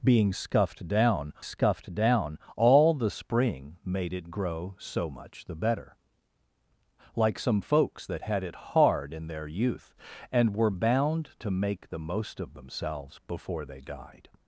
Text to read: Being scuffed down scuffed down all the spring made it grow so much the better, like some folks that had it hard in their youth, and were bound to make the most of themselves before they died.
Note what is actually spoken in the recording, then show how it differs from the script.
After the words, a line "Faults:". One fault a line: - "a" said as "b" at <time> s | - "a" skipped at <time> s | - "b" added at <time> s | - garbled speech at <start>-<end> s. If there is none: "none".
Being scuffed down scuffed down all the spring made it grow so much the better, like some folks that had it hard in their youth, and were bound to make the most of themselves before they died.
Faults:
none